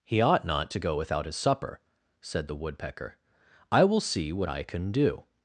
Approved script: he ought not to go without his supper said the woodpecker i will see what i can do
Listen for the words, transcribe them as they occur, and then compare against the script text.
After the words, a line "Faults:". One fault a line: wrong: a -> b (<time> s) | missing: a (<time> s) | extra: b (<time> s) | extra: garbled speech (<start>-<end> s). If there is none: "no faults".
he ought not to go without his supper said the woodpecker i will see what i can do
Faults:
no faults